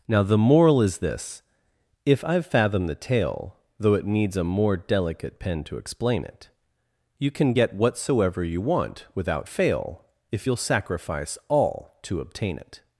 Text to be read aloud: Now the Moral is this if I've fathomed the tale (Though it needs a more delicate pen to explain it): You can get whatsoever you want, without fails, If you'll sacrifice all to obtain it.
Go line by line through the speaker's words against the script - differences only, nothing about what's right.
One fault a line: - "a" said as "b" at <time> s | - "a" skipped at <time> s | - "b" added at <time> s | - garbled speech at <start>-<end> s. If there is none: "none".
- "fails" said as "fail" at 9.5 s